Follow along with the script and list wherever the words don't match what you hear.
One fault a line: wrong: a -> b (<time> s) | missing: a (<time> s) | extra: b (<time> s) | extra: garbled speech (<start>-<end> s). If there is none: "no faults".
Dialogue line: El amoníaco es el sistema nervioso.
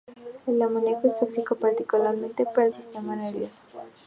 extra: tóxico particularmente para (1.2 s)